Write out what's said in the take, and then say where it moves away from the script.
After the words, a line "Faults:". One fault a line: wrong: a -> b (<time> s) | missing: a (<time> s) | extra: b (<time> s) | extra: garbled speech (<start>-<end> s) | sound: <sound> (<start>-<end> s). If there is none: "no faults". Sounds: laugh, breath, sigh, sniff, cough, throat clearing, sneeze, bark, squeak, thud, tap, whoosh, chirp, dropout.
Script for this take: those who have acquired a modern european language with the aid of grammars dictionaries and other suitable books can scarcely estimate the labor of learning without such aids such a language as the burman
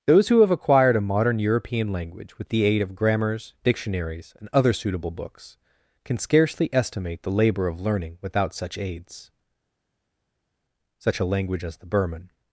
those who have acquired a modern european language with the aid of grammars dictionaries and other suitable books can scarcely estimate the labor of learning without such aids such a language as the burman
Faults:
no faults